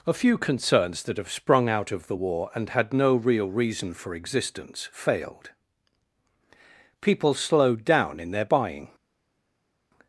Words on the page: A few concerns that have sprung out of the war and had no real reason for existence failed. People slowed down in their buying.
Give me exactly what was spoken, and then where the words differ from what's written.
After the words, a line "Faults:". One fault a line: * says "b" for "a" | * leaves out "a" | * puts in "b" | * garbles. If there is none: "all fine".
A few concerns that have sprung out of the war and had no real reason for existence failed. People slowed down in their buying.
Faults:
all fine